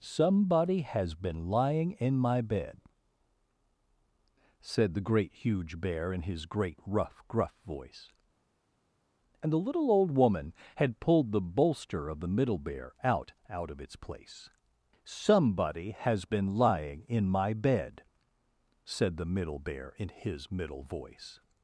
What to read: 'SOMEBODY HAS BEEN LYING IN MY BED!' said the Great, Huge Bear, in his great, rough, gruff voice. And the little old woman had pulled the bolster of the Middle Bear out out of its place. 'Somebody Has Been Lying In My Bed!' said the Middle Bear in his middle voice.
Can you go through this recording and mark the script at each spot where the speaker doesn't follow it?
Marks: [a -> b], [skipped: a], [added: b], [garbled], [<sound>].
'SOMEBODY HAS BEEN LYING IN MY BED!' said the Great, Huge Bear, in his great, rough, gruff voice. And the little old woman had pulled the bolster of the Middle Bear out out of its place. 'Somebody Has Been Lying In My Bed!' said the Middle Bear in his middle voice.